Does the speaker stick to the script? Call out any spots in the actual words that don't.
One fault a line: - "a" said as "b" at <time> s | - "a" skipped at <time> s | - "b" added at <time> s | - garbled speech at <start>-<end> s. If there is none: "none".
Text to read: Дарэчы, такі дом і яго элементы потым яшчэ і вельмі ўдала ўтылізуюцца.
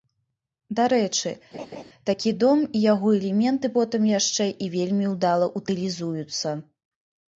none